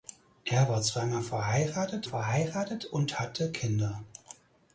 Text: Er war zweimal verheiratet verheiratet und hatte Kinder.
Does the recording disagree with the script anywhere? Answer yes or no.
no